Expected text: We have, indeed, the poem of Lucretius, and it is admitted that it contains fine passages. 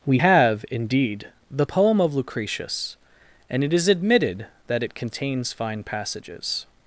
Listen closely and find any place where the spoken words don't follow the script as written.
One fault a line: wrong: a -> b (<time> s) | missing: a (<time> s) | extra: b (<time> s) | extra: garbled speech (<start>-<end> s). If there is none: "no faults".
no faults